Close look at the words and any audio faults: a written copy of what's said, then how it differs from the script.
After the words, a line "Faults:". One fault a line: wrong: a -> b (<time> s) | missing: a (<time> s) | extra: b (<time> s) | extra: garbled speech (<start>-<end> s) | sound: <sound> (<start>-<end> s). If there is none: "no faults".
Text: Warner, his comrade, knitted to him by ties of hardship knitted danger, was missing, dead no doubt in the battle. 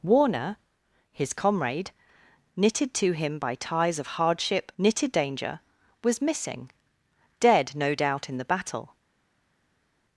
Warner, his comrade, knitted to him by ties of hardship knitted danger, was missing, dead no doubt in the battle.
Faults:
no faults